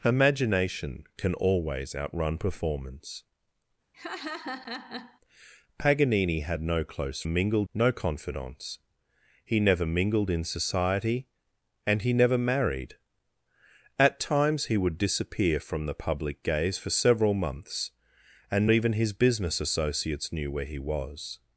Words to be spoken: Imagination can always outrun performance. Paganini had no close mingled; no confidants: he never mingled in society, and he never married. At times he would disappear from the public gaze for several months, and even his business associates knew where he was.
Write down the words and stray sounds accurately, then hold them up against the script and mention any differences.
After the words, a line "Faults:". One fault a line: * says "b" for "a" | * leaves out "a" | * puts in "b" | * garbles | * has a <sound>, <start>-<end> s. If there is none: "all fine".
Imagination can always outrun performance. Paganini had no close mingled; no confidants: he never mingled in society, and he never married. At times he would disappear from the public gaze for several months, and even his business associates knew where he was.
Faults:
* has a laugh, 3.9-5.2 s